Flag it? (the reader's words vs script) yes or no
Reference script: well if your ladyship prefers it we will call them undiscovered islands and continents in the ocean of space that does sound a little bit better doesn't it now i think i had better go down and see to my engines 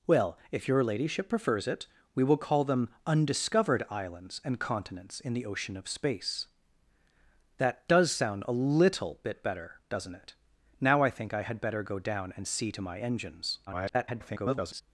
yes